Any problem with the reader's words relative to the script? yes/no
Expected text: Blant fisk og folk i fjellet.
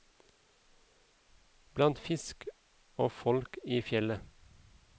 no